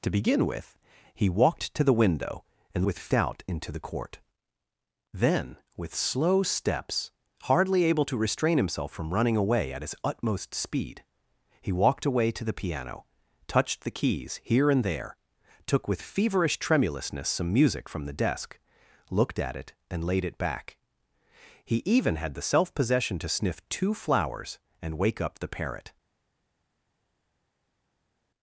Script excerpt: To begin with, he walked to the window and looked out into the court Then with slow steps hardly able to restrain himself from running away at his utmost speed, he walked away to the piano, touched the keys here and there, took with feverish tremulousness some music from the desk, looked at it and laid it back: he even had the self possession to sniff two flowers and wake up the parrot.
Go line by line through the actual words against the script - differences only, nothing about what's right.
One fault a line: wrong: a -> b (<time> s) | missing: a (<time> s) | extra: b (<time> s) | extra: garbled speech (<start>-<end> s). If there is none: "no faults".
wrong: looked -> with (2.8 s)